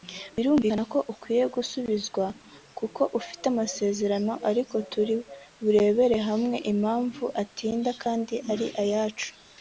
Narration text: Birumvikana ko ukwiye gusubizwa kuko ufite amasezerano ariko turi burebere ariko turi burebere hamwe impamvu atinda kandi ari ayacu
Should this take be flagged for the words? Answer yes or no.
yes